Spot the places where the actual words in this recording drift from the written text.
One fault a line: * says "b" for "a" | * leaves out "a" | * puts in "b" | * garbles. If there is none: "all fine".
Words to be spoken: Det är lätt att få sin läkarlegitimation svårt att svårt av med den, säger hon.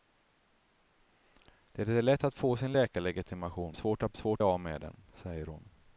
all fine